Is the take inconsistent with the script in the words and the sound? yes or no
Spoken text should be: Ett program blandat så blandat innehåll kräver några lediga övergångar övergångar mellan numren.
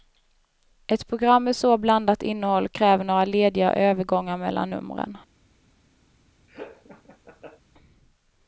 yes